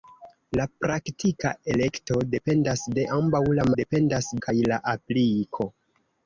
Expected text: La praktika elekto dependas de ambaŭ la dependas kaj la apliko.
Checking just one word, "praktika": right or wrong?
right